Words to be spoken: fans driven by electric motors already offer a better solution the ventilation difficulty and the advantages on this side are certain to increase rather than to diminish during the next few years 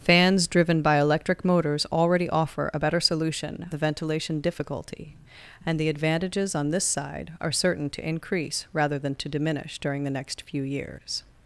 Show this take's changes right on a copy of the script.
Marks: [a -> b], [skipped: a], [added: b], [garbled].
fans driven by electric motors already offer a better solution the ventilation difficulty and the advantages on this side are certain to increase rather than to diminish during the next few years